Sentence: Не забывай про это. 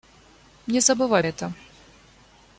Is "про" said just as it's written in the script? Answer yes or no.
no